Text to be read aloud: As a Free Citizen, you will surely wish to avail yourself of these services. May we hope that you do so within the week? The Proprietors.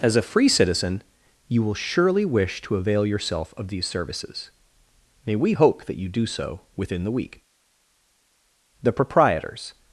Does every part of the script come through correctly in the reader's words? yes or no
yes